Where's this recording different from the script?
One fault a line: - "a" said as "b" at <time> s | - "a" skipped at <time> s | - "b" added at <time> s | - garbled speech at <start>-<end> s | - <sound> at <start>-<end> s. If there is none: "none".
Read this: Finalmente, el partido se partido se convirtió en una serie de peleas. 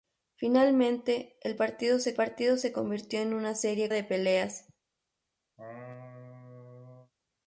- laugh at 5.6-7.1 s